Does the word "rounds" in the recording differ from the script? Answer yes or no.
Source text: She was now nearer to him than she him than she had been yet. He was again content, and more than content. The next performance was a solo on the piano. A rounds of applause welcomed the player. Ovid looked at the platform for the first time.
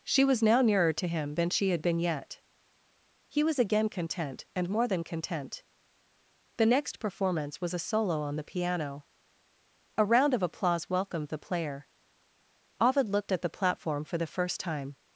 yes